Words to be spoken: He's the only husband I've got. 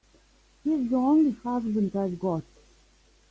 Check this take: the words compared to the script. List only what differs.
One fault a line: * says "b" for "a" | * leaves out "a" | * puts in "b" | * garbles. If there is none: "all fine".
all fine